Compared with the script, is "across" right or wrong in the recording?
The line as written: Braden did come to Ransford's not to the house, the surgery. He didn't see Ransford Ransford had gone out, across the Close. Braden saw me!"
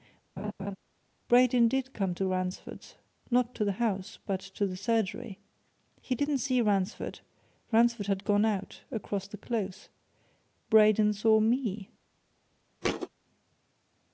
right